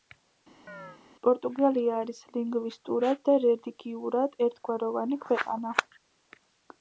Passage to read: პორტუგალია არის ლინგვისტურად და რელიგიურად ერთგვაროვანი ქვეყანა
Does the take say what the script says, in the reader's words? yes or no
yes